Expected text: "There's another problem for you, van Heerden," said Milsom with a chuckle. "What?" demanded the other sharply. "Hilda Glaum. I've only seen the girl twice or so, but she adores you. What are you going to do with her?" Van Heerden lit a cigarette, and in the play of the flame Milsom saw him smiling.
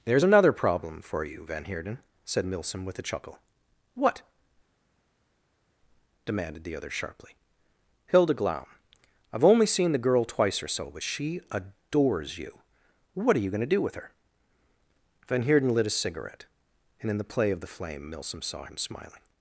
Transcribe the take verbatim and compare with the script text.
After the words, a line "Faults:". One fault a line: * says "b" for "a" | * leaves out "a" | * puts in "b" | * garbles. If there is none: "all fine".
"There's another problem for you, van Heerden," said Milsom with a chuckle. "What?" demanded the other sharply. "Hilda Glaum. I've only seen the girl twice or so, but she adores you. What are you going to do with her?" Van Heerden lit a cigarette, and in the play of the flame Milsom saw him smiling.
Faults:
all fine